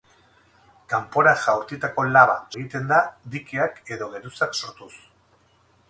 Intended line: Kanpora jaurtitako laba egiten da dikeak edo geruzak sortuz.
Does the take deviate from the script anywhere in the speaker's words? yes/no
no